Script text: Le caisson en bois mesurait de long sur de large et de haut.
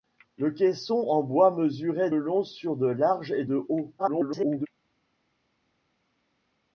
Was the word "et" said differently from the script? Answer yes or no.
no